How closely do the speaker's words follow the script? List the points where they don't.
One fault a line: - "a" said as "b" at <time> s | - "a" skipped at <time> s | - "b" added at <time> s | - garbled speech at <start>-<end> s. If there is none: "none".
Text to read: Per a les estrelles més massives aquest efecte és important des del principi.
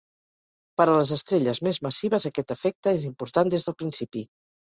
none